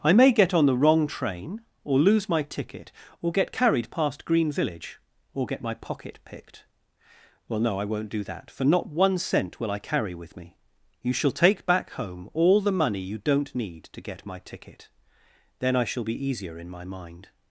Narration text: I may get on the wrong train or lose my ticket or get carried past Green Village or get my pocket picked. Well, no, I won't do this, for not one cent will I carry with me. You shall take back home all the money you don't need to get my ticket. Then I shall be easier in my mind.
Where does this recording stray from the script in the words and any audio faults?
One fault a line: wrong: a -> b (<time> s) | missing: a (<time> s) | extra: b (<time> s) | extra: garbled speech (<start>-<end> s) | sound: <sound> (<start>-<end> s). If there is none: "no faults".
wrong: this -> that (8.2 s)